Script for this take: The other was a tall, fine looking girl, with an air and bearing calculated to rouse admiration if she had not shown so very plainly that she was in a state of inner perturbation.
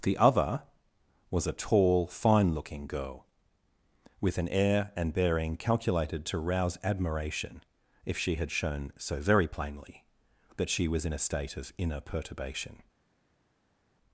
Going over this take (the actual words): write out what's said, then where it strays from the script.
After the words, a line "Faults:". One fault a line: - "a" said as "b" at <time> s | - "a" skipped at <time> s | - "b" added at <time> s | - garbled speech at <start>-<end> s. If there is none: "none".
The other was a tall, fine looking girl, with an air and bearing calculated to rouse admiration if she had shown so very plainly that she was in a state of inner perturbation.
Faults:
- "not" skipped at 8.5 s